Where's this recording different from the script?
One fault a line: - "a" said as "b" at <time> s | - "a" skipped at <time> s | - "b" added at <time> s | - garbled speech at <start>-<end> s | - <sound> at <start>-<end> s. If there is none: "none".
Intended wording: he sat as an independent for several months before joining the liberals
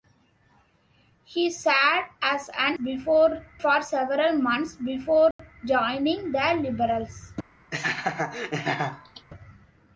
- "independent" said as "before" at 2.7 s
- dropout at 5.3-5.4 s
- laugh at 7.7-9.3 s